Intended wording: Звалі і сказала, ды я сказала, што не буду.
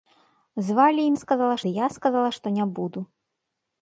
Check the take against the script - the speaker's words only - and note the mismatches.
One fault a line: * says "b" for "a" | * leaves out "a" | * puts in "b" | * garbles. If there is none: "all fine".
all fine